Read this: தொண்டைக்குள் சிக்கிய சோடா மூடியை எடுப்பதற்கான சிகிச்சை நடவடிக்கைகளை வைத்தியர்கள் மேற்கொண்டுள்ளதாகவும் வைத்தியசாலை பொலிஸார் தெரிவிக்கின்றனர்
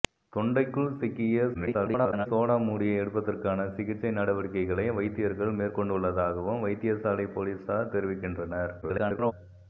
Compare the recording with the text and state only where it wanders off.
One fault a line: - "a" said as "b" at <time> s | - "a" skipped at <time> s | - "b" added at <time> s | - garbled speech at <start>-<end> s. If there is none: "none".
- garbled speech at 1.5-2.3 s
- garbled speech at 8.8-9.3 s